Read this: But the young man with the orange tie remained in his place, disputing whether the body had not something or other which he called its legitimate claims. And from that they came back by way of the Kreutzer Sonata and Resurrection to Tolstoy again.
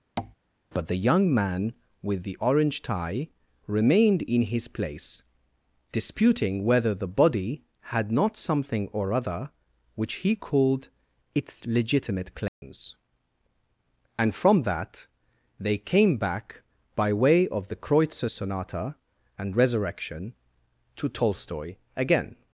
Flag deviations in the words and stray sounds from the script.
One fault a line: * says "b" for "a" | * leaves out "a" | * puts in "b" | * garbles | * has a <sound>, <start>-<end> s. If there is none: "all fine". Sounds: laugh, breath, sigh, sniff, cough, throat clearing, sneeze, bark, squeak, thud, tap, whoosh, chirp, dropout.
* has a tap, 0.2-0.3 s
* has a dropout, 12.5-12.6 s